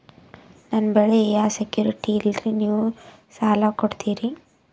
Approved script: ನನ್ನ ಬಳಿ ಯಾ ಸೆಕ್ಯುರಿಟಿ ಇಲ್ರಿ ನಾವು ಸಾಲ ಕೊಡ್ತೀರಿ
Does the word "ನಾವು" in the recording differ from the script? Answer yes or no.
yes